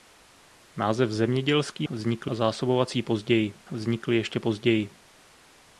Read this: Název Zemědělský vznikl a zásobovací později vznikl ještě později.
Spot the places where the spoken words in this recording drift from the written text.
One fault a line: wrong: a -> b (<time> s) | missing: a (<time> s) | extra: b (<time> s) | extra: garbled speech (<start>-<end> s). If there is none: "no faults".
no faults